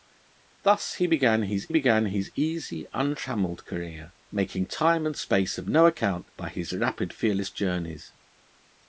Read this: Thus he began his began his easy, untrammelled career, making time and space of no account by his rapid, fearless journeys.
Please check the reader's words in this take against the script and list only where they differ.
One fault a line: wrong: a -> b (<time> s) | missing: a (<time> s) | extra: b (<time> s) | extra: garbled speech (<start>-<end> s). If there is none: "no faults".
no faults